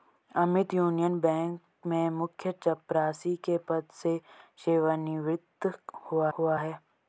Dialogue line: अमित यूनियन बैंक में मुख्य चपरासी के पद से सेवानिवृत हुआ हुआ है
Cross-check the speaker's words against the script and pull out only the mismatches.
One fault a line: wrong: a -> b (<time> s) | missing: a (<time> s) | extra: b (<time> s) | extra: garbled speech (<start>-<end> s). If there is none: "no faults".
no faults